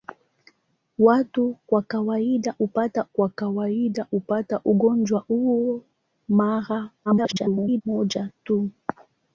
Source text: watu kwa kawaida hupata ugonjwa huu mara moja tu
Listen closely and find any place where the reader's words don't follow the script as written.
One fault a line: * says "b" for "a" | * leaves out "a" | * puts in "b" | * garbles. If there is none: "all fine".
* puts in "kwa kawaida hupata"
* garbles